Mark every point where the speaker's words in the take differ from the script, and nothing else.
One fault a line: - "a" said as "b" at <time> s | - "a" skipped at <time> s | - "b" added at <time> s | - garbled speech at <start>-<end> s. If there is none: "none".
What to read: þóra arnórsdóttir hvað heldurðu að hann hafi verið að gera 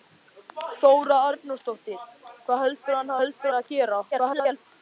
- "hafi" said as "heldurðu" at 3.2 s
- garbled speech at 4.1-4.7 s